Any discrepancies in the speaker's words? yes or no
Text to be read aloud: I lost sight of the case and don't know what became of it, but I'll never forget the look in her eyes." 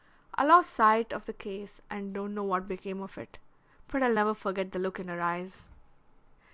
no